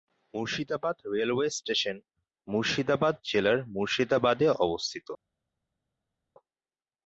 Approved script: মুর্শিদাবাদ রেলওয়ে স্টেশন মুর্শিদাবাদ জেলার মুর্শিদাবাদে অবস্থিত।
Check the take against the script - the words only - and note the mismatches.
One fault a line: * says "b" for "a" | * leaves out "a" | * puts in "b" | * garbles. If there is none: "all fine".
all fine